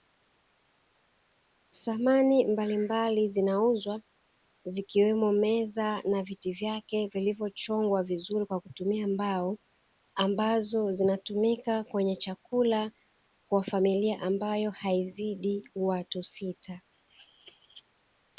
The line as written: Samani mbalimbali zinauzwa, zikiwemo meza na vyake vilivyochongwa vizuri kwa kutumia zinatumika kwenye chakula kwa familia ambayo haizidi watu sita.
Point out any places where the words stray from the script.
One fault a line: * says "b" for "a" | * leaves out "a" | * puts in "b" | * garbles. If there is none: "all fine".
* puts in "viti"
* puts in "mbao ambazo"